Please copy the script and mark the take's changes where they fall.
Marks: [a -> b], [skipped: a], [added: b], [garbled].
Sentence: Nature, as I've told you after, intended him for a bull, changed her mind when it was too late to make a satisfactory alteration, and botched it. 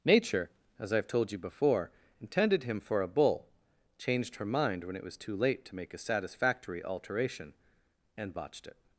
Nature, as I've told you [after, -> before] intended him for a bull, changed her mind when it was too late to make a satisfactory alteration, and botched it.